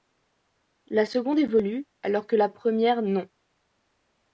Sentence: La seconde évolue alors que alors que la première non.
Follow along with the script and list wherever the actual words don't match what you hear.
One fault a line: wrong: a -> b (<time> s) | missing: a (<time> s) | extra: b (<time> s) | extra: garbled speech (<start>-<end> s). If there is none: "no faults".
missing: alors que (2.4 s)